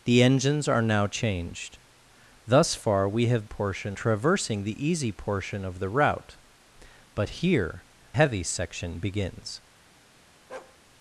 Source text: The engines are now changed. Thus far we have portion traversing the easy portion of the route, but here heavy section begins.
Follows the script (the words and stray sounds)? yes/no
no